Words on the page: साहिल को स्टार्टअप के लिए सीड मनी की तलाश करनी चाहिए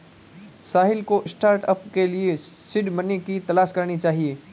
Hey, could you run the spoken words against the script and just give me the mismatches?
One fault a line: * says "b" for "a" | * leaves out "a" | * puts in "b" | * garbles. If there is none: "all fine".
all fine